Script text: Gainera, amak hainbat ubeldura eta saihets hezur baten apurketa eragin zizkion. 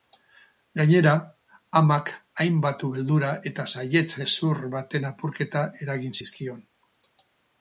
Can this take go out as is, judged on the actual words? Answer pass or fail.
pass